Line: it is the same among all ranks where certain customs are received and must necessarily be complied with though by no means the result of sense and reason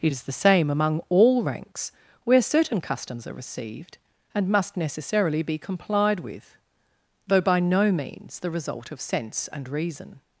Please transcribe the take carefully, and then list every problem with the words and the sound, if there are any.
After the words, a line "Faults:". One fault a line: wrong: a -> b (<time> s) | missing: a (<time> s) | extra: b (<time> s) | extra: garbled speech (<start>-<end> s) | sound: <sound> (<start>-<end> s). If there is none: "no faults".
it is the same among all ranks where certain customs are received and must necessarily be complied with though by no means the result of sense and reason
Faults:
no faults